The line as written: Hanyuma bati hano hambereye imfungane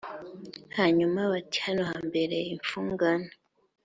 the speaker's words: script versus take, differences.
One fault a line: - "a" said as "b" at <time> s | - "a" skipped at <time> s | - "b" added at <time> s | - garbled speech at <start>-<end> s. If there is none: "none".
none